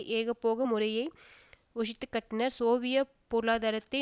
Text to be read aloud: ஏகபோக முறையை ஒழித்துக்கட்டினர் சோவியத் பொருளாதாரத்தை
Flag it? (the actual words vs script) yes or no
no